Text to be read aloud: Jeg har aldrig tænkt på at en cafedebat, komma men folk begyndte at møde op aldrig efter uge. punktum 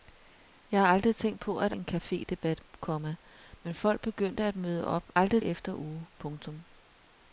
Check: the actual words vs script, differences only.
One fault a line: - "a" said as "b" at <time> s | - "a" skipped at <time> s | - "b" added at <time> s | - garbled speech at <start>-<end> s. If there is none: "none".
none